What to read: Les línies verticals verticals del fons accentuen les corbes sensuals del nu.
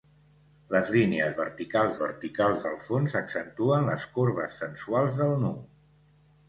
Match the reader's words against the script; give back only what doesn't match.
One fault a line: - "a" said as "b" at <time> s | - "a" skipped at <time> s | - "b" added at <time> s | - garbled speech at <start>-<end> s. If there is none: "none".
none